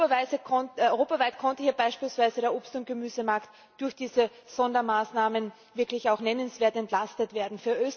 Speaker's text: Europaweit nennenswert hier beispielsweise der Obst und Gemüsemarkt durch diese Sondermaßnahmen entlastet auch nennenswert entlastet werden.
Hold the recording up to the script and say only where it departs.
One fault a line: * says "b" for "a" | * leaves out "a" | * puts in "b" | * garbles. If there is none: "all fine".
* says "konnte" for "nennenswert"
* says "wirklich" for "entlastet"